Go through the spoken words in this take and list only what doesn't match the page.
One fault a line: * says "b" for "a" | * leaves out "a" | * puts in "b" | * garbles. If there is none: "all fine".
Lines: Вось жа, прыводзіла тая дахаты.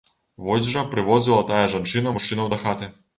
* puts in "жанчына мужчынаў"